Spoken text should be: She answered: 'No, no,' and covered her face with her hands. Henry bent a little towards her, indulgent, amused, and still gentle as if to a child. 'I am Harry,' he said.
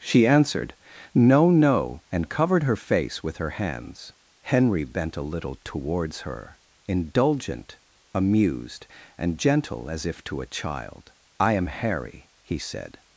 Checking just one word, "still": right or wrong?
wrong